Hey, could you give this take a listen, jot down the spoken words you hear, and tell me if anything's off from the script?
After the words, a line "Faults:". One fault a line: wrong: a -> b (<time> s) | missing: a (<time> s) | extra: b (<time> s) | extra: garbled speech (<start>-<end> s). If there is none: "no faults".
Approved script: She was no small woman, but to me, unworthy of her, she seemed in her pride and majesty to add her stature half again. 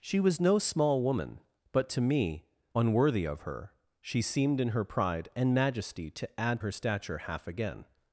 She was no small woman, but to me, unworthy of her, she seemed in her pride and majesty to add her stature half again.
Faults:
no faults